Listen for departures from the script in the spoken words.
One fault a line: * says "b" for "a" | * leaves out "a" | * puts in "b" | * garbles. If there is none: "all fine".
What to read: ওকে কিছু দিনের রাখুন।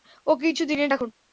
all fine